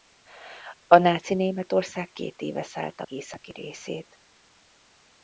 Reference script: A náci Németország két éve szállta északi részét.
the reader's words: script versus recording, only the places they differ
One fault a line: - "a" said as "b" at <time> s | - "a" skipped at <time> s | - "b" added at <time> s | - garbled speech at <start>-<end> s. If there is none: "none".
none